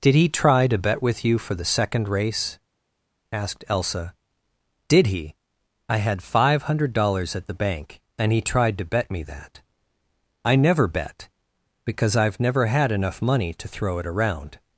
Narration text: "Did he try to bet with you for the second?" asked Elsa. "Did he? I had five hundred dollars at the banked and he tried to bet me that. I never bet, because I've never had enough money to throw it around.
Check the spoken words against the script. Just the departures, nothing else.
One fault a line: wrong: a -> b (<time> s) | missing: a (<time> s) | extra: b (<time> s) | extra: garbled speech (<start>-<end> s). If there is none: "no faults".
extra: race (2.1 s)
wrong: banked -> bank (7.5 s)